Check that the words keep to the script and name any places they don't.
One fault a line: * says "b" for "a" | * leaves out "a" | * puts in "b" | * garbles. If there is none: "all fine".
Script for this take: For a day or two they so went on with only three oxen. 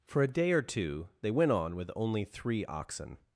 * leaves out "so"